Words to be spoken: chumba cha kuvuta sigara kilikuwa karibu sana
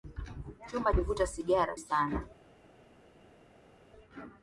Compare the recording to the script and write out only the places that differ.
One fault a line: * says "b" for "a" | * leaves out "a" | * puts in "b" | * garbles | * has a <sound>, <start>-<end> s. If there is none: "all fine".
* leaves out "cha"
* leaves out "kilikuwa karibu"